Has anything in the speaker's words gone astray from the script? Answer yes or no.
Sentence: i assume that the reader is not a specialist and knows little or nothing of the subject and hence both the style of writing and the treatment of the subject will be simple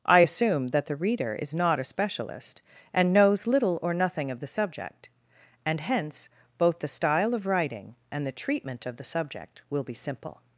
no